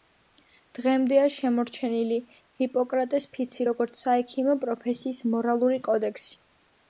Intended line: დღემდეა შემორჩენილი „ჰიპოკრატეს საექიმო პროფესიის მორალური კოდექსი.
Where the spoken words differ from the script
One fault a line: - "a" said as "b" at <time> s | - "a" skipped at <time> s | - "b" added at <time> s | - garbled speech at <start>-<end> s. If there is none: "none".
- "ფიცი როგორც" added at 3.4 s